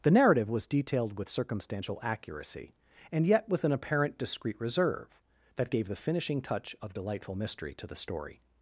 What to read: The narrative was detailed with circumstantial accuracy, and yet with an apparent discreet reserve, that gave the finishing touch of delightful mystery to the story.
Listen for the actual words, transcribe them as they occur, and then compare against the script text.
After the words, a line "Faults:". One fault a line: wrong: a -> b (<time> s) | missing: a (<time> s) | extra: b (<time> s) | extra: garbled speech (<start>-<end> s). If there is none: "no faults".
The narrative was detailed with circumstantial accuracy, and yet with an apparent discreet reserve, that gave the finishing touch of delightful mystery to the story.
Faults:
no faults